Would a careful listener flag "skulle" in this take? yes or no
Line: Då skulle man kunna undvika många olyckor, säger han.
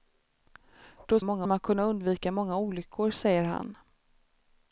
yes